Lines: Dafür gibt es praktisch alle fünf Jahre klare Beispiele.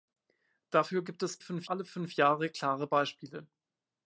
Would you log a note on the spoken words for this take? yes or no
yes